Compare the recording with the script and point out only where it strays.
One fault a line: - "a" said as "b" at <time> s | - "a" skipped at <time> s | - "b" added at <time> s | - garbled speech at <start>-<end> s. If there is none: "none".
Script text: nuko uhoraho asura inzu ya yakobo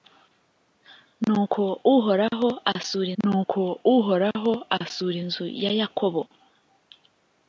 - "nuko uhoraho asura" added at 3.2 s